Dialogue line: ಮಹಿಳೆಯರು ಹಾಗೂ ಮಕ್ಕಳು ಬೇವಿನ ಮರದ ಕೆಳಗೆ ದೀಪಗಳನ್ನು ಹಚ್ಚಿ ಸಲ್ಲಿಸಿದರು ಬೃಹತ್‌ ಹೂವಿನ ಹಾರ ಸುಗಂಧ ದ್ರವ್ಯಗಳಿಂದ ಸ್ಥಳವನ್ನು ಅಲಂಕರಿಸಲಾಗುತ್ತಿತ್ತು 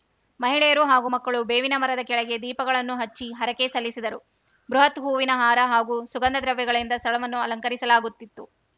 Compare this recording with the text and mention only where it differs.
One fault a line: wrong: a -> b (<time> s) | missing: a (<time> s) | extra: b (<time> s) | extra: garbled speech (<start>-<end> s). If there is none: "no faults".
extra: ಹರಕೆ (3.3 s)
extra: ಹಾಗೂ (5.7 s)